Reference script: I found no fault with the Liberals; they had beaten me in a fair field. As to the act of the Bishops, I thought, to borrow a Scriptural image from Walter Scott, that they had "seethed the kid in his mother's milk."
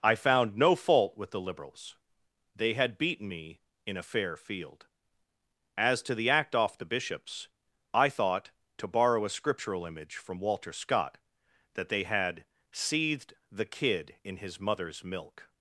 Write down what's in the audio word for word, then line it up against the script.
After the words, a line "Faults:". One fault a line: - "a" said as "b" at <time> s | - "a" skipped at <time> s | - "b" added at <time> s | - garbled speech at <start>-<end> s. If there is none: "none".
I found no fault with the Liberals; they had beaten me in a fair field. As to the act off the Bishops, I thought, to borrow a Scriptural image from Walter Scott, that they had "seethed the kid in his mother's milk."
Faults:
- "of" said as "off" at 6.5 s